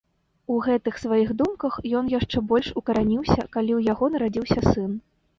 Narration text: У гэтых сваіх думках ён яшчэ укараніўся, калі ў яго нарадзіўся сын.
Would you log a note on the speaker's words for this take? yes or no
yes